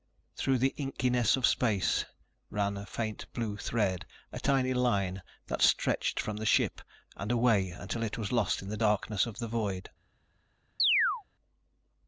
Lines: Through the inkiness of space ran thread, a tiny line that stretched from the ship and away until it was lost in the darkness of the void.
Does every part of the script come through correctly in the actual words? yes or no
no